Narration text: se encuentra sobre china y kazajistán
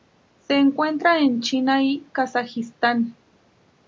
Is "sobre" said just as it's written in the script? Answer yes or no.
no